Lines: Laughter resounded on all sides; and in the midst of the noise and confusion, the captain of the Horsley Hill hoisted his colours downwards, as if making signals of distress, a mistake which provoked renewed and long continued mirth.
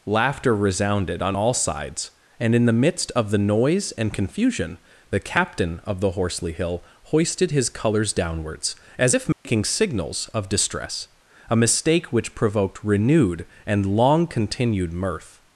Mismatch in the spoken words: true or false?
false